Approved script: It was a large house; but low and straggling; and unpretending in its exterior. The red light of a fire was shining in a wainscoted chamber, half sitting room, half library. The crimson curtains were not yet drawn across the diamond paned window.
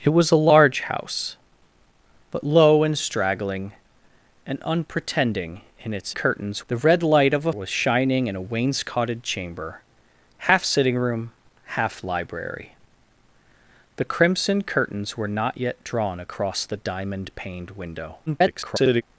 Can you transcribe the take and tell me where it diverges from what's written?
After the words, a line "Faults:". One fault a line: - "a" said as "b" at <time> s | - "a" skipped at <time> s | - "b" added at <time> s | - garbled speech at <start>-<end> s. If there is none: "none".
It was a large house; but low and straggling; and unpretending in its curtains. The red light of a was shining in a wainscoted chamber, half sitting room, half library. The crimson curtains were not yet drawn across the diamond paned window. [garbled]
Faults:
- "exterior" said as "curtains" at 6.1 s
- "fire" skipped at 7.5 s
- garbled speech at 18.3-19.0 s